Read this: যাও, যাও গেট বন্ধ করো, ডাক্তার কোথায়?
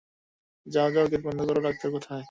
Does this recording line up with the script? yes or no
yes